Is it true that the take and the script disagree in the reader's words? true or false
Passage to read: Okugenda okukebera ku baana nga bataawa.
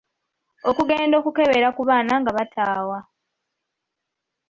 false